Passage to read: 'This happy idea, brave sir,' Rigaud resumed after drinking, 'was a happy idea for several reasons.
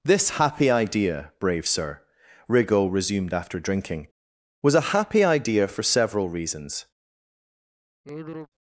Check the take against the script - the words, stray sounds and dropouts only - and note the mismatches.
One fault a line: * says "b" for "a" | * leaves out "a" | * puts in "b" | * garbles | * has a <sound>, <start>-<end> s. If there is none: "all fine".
* has a sigh, 8.0-8.5 s